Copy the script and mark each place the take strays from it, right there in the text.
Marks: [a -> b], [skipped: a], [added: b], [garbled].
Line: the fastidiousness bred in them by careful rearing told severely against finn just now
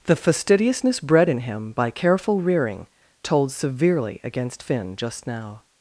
the fastidiousness bred in [them -> him] by careful rearing told severely against finn just now